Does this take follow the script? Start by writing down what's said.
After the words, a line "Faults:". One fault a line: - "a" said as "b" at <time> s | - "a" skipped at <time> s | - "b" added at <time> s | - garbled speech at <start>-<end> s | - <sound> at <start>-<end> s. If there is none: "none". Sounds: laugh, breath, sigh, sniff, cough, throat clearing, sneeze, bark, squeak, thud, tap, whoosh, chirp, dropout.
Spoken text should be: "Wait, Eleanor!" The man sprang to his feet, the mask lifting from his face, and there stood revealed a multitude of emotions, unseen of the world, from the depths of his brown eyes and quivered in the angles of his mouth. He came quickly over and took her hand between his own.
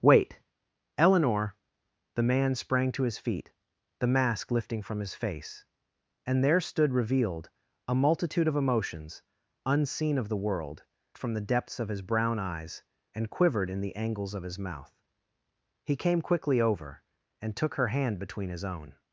"Wait, Eleanor!" The man sprang to his feet, the mask lifting from his face, and there stood revealed a multitude of emotions, unseen of the world, from the depths of his brown eyes and quivered in the angles of his mouth. He came quickly over and took her hand between his own.
Faults:
none